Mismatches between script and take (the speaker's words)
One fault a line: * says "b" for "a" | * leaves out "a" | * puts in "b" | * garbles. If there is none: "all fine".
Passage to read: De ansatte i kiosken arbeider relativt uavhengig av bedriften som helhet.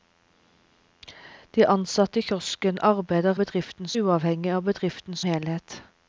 * says "bedriften" for "relativt"
* leaves out "som"